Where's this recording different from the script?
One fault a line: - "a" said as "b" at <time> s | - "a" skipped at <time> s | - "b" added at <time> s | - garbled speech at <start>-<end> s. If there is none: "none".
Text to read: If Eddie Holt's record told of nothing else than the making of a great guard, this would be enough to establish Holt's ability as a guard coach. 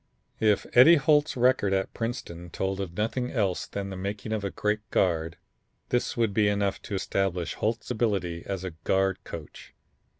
- "at Princeton" added at 1.7 s